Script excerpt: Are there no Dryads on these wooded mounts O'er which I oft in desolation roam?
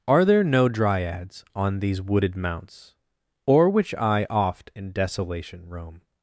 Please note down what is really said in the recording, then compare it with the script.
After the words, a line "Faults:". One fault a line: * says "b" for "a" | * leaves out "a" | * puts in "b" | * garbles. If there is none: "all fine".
Are there no Dryads on these wooded mounts O'er which I oft in desolation roam?
Faults:
all fine